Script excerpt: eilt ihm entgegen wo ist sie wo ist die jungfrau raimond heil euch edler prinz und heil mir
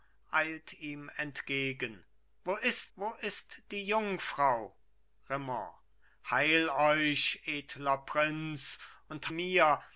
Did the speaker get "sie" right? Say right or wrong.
wrong